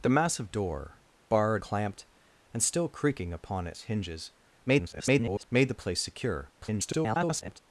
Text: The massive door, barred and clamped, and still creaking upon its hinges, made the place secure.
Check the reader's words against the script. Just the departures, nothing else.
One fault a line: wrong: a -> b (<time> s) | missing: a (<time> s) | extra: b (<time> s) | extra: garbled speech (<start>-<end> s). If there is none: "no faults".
missing: and (1.6 s)
extra: garbled speech (4.7-5.5 s)
extra: garbled speech (6.6-7.6 s)